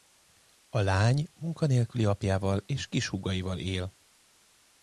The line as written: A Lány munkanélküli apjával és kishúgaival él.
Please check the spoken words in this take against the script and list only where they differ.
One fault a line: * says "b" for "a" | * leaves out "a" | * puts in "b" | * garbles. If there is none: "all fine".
all fine